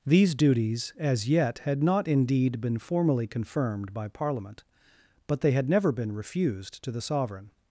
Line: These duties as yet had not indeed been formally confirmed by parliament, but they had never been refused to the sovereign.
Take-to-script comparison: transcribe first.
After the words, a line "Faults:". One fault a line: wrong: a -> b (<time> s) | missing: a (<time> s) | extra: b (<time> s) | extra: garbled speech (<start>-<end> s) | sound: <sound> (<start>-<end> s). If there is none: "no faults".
These duties as yet had not indeed been formally confirmed by parliament, but they had never been refused to the sovereign.
Faults:
no faults